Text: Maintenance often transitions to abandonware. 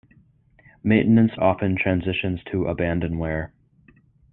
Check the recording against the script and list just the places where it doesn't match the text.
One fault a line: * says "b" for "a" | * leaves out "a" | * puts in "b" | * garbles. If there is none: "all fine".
all fine